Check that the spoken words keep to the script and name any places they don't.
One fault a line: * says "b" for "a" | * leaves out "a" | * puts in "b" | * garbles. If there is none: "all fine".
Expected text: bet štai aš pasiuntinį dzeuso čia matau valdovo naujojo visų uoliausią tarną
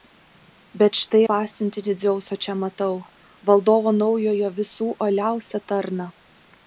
* leaves out "aš"